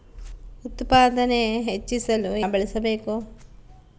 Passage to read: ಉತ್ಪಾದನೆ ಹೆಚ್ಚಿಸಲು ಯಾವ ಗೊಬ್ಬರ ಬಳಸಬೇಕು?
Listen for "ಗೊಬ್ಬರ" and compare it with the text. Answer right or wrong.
wrong